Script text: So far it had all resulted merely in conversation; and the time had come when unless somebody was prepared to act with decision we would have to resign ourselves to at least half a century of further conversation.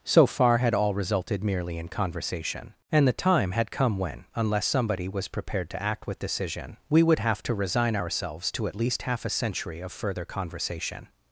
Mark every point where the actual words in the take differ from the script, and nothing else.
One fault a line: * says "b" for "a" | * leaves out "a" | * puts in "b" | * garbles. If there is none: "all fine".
* leaves out "it"